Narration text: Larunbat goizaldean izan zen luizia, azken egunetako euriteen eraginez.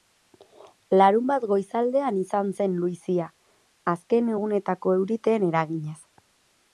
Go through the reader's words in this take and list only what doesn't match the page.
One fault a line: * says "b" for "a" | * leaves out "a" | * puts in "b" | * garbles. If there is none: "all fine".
all fine